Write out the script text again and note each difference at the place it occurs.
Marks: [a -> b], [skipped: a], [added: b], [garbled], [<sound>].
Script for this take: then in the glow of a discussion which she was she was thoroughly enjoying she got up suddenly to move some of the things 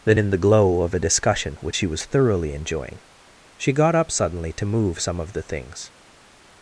then in the glow of a discussion which she was [skipped: she was] thoroughly enjoying she got up suddenly to move some of the things